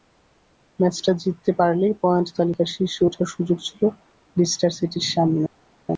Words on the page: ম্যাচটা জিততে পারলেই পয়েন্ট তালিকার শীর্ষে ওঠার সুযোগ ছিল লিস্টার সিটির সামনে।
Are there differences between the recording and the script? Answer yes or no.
no